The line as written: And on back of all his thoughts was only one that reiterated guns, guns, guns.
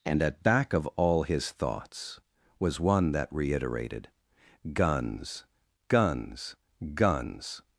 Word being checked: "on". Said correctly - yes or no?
no